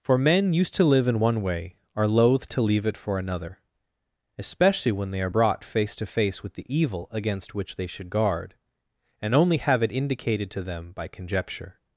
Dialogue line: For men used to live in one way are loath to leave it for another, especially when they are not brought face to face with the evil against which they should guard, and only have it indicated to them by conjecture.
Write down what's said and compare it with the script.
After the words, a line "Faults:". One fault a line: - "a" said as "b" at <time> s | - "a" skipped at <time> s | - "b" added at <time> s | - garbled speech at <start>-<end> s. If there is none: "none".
For men used to live in one way are loath to leave it for another, especially when they are brought face to face with the evil against which they should guard, and only have it indicated to them by conjecture.
Faults:
- "not" skipped at 5.3 s